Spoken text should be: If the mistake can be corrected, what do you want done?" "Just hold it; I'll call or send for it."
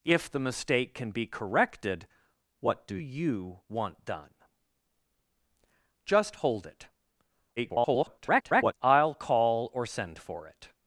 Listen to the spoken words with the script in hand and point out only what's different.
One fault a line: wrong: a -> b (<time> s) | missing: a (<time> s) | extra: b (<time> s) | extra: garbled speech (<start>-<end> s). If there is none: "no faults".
extra: garbled speech (7.6-8.7 s)